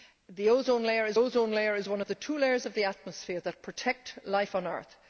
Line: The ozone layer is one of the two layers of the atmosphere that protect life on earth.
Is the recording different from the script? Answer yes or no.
yes